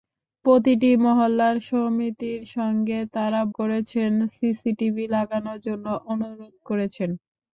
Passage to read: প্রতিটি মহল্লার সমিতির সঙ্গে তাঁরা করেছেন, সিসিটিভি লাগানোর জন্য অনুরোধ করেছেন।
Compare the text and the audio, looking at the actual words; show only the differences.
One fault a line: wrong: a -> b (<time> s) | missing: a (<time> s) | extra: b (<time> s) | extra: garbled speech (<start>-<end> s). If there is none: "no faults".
no faults